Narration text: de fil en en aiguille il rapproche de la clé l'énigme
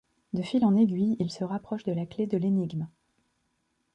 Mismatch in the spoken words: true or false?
true